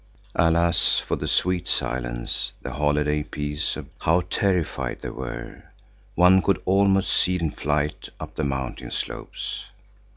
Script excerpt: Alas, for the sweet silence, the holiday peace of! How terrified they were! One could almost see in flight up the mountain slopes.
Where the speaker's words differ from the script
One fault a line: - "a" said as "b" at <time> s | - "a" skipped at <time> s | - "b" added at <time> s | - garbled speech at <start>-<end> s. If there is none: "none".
none